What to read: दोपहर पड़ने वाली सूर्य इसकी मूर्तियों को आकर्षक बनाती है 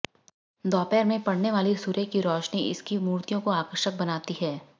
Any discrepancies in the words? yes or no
yes